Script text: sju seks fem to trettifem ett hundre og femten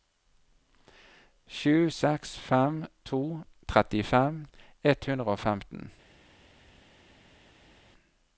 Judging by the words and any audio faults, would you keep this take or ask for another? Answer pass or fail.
pass